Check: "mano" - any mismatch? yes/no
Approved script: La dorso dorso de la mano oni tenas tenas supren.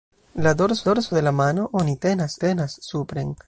no